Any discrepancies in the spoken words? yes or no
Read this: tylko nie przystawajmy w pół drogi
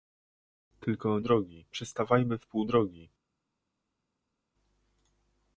yes